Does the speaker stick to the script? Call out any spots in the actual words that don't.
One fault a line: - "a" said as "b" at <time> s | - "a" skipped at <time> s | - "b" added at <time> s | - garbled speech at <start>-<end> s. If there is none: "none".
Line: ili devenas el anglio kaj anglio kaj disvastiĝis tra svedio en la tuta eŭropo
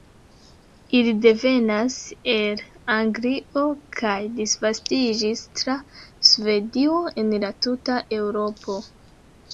- "anglio kaj" skipped at 4.2 s